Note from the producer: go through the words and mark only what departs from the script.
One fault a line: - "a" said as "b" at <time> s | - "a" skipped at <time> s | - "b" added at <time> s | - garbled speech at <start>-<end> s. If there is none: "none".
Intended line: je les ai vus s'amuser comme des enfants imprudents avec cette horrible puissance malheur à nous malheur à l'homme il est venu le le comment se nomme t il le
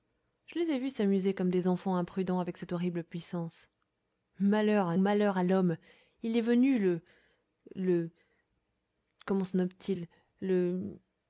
- "nous" skipped at 5.0 s